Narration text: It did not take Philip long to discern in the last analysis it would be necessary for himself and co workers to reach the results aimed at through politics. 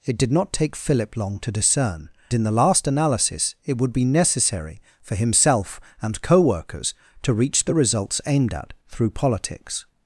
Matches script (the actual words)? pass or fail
pass